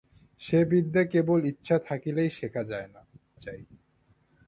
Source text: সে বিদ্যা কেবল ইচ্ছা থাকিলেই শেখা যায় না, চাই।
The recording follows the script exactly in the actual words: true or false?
true